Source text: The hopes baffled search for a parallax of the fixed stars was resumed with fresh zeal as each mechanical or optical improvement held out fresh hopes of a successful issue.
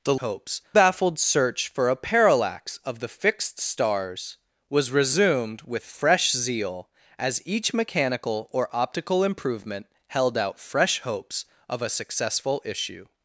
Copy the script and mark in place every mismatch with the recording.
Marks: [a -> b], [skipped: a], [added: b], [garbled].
The hopes baffled search for a parallax of the fixed stars was resumed with fresh zeal as each mechanical or optical improvement held out fresh hopes of a successful issue.